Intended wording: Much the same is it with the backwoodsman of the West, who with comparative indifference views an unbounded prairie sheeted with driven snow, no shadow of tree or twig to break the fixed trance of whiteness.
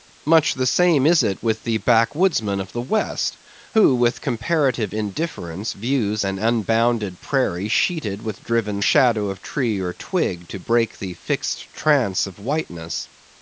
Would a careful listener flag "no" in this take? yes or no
yes